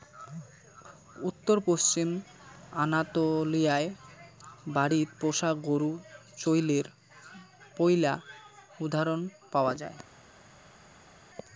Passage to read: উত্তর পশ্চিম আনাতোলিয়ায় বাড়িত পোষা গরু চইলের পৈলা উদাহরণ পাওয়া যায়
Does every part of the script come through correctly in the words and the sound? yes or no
yes